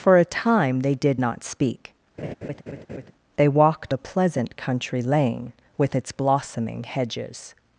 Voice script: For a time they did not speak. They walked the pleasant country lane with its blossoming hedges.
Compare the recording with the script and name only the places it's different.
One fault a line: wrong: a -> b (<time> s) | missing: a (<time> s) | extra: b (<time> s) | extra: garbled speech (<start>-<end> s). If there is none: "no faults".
no faults